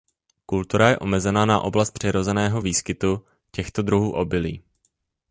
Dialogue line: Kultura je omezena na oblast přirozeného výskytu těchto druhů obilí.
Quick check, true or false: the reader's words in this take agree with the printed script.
true